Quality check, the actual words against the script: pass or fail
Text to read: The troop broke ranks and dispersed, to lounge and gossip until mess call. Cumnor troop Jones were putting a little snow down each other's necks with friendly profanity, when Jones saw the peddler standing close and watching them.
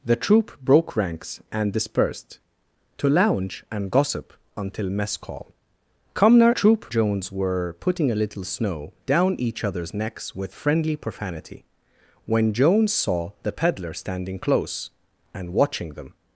pass